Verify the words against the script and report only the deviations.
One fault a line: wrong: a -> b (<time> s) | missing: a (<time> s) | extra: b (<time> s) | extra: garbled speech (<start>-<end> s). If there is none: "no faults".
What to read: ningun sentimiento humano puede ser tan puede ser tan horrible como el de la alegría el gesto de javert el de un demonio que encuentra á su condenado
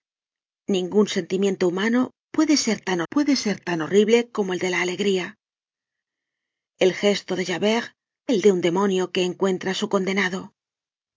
no faults